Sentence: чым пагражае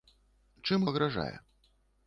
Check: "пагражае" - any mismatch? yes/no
no